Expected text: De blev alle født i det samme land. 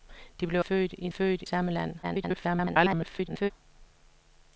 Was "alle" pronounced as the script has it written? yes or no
no